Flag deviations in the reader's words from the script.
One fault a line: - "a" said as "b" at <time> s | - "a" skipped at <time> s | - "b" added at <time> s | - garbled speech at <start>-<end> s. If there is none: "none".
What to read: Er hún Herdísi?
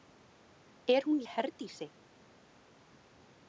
none